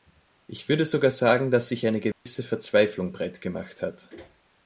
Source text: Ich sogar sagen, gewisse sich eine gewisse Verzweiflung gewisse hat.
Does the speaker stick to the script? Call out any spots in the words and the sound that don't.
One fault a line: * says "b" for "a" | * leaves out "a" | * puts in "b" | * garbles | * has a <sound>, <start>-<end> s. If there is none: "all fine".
* puts in "würde"
* says "dass" for "gewisse"
* has a dropout, 2.1-2.3 s
* says "breitgemacht" for "gewisse"